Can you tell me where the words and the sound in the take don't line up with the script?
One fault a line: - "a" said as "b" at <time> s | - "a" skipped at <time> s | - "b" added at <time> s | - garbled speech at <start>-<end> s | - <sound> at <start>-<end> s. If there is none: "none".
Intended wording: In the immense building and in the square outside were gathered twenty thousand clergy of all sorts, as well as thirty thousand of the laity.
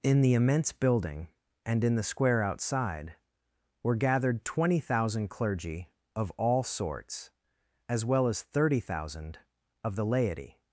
none